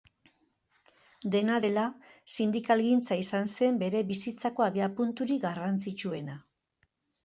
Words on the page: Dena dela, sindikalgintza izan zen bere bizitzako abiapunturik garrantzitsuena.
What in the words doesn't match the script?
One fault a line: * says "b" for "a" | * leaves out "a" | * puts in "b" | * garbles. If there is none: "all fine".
all fine